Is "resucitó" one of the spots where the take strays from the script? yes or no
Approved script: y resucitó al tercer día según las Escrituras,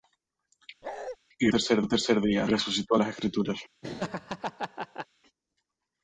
yes